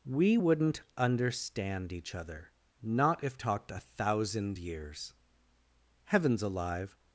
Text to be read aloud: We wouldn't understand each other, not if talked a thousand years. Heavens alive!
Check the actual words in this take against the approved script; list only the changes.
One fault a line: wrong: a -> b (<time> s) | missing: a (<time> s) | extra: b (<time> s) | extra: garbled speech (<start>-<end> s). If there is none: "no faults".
no faults